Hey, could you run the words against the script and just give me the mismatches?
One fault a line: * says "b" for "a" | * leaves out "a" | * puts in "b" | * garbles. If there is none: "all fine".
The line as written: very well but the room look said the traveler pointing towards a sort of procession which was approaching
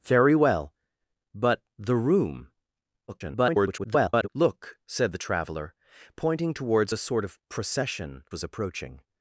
* garbles
* leaves out "which"